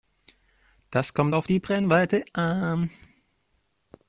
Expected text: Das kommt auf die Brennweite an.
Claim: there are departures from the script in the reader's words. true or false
false